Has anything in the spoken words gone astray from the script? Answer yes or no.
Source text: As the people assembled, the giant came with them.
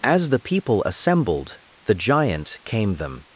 yes